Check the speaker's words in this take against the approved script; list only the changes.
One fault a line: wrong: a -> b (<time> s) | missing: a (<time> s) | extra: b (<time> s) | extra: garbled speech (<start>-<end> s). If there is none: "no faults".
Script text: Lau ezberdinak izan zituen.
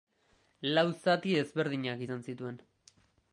extra: zati (1.0 s)